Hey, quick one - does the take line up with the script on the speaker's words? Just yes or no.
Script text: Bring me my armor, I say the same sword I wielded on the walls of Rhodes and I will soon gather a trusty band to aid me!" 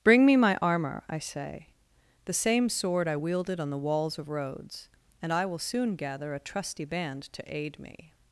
yes